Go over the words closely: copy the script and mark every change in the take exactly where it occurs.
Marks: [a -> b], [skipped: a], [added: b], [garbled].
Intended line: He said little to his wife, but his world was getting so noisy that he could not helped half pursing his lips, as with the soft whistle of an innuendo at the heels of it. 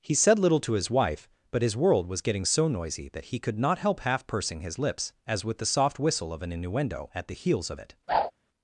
He said little to his wife, but his world was getting so noisy that he could not [helped -> help] half pursing his lips, as with the soft whistle of an innuendo at the heels of it.